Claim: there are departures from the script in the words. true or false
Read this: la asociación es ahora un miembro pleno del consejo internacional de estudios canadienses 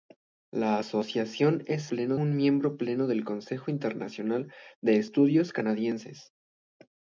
true